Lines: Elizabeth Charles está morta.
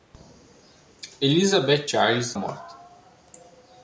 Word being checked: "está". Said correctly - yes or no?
no